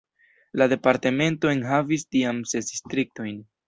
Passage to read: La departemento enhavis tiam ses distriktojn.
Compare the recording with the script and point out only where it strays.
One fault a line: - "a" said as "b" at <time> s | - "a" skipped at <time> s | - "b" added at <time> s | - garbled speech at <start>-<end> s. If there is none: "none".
none